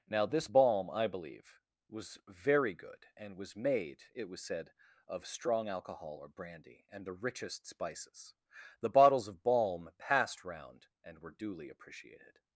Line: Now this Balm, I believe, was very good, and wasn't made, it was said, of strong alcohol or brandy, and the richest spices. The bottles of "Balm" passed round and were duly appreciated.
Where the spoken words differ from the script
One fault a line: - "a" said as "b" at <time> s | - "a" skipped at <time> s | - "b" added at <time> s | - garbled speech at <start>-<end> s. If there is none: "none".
- "wasn't" said as "was" at 3.4 s